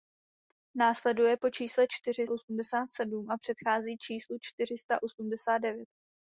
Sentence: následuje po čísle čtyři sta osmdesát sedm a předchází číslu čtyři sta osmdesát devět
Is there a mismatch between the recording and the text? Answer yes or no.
yes